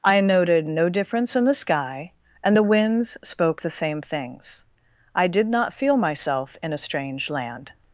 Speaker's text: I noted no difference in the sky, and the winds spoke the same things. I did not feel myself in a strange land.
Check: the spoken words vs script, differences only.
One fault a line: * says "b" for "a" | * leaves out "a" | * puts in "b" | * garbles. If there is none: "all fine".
all fine